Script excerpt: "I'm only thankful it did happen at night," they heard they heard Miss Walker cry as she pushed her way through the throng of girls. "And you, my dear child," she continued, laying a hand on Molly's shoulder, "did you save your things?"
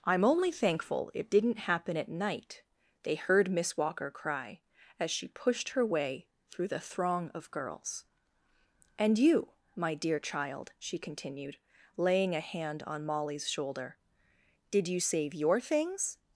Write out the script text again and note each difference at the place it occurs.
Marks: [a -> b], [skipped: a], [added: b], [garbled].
"I'm only thankful it [did -> didn't] happen at night," they heard [skipped: they heard] Miss Walker cry as she pushed her way through the throng of girls. "And you, my dear child," she continued, laying a hand on Molly's shoulder, "did you save your things?"